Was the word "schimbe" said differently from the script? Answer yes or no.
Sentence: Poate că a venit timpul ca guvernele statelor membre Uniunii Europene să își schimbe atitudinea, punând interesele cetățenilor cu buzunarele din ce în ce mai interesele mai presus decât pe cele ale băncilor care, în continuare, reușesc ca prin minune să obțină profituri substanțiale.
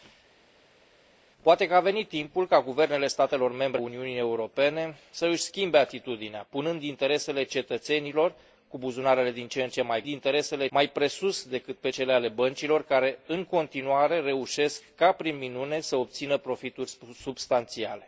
no